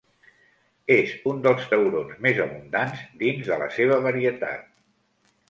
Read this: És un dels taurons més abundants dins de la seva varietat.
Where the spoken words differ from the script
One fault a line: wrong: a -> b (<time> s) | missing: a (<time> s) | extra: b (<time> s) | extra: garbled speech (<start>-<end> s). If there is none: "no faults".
no faults